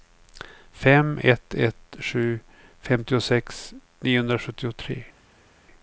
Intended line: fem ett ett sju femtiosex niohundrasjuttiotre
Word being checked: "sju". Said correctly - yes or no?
yes